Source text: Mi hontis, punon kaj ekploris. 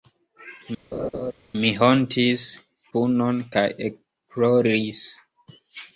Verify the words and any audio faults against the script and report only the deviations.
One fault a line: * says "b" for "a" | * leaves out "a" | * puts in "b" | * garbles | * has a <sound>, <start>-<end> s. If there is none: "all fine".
* has a laugh, 0.9-1.3 s